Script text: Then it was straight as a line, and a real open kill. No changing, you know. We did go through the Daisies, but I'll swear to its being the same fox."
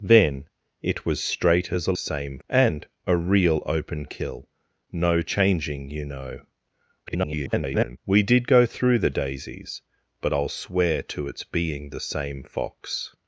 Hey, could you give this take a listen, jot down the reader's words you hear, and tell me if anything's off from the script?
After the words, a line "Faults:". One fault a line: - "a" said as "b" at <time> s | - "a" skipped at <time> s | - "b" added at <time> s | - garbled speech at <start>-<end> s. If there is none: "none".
Then it was straight as a same, and a real open kill. No changing, you know. [garbled] We did go through the Daisies, but I'll swear to its being the same fox."
Faults:
- "line" said as "same" at 1.9 s
- garbled speech at 7.1-8.0 s